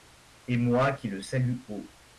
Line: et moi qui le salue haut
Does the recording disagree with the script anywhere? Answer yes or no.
no